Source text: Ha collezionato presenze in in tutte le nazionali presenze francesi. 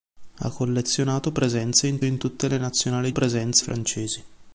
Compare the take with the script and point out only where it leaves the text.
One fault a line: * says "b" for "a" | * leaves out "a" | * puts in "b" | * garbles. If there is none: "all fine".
all fine